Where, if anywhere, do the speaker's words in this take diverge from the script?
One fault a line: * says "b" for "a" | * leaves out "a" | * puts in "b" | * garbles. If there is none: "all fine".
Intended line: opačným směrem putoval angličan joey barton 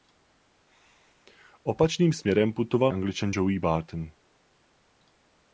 all fine